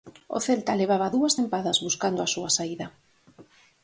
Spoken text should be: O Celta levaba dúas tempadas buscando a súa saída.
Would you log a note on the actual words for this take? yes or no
no